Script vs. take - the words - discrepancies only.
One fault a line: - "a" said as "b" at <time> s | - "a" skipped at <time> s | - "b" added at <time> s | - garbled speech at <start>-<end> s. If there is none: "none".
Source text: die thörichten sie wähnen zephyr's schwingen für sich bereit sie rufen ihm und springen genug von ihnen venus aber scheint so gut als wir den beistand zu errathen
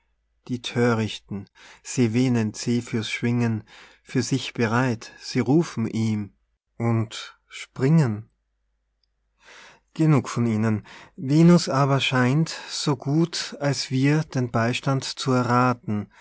none